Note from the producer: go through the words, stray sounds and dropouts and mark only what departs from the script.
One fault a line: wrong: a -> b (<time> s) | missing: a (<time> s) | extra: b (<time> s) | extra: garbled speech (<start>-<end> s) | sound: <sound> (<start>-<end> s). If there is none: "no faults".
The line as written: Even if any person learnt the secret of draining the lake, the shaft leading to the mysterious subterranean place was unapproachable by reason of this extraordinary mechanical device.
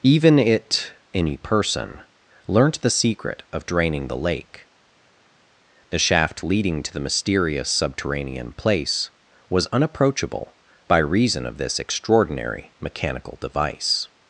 wrong: if -> it (0.4 s)